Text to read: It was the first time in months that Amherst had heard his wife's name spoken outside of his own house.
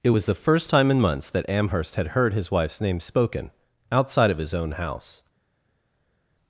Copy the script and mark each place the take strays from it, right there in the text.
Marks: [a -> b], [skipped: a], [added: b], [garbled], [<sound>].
It was the first time in months that Amherst had heard his wife's name spoken outside of his own house.